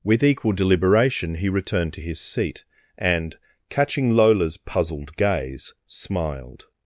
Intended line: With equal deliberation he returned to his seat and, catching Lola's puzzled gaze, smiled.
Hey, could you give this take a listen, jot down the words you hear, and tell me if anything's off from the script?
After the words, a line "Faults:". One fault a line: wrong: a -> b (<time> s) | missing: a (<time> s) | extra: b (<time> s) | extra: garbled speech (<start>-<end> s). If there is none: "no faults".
With equal deliberation he returned to his seat and, catching Lola's puzzled gaze, smiled.
Faults:
no faults